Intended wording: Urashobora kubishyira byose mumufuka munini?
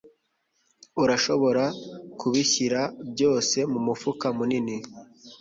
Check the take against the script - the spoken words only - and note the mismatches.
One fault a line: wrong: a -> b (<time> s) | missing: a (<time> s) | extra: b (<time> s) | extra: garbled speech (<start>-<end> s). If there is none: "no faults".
no faults